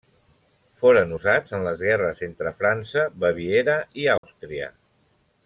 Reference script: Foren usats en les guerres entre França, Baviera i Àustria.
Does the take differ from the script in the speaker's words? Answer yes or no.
no